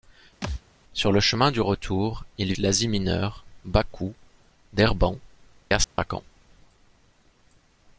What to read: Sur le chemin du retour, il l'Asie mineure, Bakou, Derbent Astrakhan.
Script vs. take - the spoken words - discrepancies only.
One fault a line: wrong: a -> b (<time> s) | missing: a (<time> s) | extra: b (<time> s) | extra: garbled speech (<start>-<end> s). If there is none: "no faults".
no faults